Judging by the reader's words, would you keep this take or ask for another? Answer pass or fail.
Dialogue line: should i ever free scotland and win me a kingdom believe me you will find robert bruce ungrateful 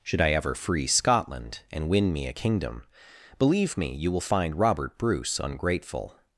pass